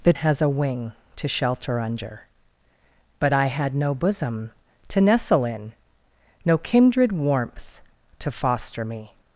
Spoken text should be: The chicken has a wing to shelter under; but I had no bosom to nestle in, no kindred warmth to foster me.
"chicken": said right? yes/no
no